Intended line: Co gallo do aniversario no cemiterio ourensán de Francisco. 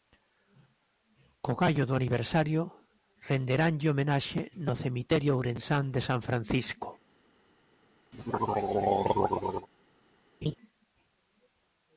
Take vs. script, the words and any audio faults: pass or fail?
fail